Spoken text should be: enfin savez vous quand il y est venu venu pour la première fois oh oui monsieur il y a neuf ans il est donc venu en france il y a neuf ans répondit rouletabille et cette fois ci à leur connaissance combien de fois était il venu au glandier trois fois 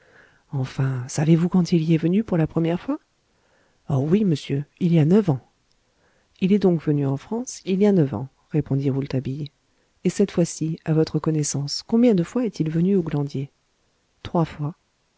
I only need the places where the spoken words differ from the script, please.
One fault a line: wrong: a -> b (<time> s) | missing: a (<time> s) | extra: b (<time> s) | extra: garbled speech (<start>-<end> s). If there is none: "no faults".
missing: venu (2.2 s)
wrong: leur -> votre (10.9 s)
wrong: était -> est (12.4 s)